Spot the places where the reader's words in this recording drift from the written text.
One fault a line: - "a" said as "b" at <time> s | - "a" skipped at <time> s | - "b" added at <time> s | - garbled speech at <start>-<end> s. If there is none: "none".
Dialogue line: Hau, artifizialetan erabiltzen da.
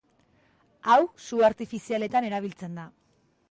- "su" added at 1.2 s